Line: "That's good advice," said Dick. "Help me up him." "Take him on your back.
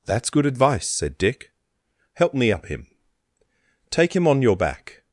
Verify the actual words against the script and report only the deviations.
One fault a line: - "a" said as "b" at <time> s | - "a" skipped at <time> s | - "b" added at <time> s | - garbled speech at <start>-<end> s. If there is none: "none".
none